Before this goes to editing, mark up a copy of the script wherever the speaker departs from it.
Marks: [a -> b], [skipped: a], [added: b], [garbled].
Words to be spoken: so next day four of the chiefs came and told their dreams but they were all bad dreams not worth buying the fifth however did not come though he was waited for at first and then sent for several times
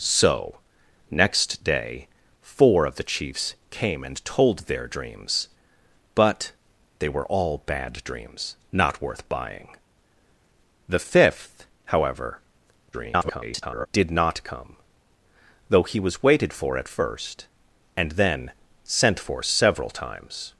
so next day four of the chiefs came and told their dreams but they were all bad dreams not worth buying the fifth however [garbled] did not come though he was waited for at first and then sent for several times